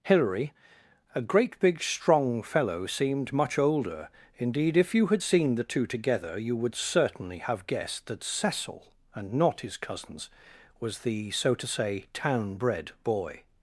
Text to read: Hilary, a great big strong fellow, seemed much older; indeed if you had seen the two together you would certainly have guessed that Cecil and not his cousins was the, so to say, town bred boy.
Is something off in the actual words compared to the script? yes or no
no